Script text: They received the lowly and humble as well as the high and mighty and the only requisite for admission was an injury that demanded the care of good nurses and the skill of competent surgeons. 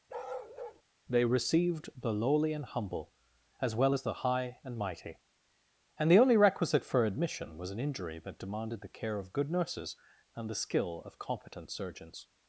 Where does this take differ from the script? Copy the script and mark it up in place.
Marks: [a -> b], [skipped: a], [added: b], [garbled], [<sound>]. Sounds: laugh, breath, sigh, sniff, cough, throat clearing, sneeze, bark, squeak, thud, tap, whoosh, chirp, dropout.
[bark] They received the lowly and humble as well as the high and mighty and the only requisite for admission was an injury that demanded the care of good nurses and the skill of competent surgeons.